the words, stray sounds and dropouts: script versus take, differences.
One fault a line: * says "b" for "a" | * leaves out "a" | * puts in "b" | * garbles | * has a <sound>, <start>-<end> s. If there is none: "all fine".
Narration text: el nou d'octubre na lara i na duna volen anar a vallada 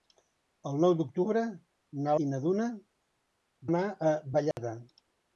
* leaves out "lara"
* leaves out "volen"
* has a dropout, 4.5-4.6 s